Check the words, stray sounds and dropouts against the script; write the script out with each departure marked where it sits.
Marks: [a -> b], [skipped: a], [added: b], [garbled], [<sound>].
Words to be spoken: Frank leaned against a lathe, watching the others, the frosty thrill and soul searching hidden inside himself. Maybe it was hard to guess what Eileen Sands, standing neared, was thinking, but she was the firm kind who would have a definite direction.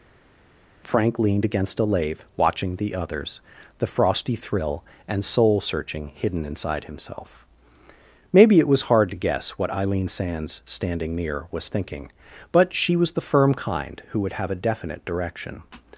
Frank leaned against a lathe, watching the others, the frosty thrill and soul searching hidden inside himself. Maybe it was hard to guess what Eileen Sands, standing [neared, -> near] was thinking, but she was the firm kind who would have a definite direction.